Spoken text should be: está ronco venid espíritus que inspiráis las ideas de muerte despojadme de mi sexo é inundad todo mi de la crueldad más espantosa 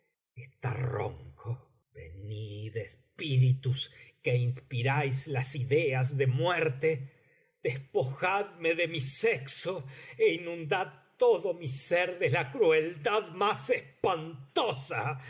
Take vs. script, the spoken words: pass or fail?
fail